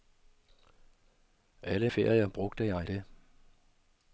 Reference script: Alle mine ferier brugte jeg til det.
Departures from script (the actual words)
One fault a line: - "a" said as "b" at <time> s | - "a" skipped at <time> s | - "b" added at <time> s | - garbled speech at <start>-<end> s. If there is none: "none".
- "mine" skipped at 1.9 s
- "til" skipped at 2.9 s